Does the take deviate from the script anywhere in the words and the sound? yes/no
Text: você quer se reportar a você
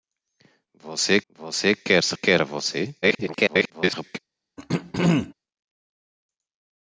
yes